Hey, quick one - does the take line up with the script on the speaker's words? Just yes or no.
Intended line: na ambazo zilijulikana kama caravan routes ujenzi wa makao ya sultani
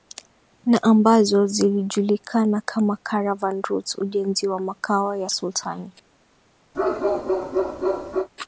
yes